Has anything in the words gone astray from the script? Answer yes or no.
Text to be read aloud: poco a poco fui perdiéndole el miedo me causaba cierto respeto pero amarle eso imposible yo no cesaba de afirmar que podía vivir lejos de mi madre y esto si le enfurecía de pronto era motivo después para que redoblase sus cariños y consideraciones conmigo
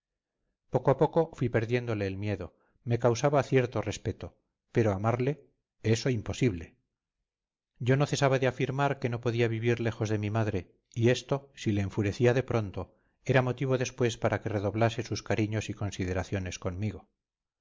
yes